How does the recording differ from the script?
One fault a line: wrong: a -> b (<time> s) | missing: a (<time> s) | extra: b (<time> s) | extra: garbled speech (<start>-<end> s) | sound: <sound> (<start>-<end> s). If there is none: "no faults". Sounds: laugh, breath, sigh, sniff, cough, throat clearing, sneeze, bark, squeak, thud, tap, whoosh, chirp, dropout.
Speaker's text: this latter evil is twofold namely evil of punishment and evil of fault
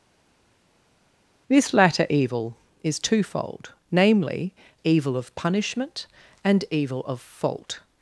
no faults